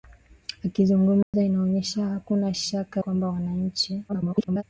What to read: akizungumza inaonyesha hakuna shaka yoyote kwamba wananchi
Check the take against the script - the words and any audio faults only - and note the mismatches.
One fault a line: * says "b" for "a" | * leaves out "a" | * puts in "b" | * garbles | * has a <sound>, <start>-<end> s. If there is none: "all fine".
* has a dropout, 1.2-1.3 s
* leaves out "yoyote"
* garbles